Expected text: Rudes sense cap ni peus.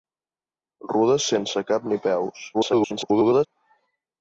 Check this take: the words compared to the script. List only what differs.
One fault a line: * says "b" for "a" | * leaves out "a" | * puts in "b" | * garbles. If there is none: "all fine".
* garbles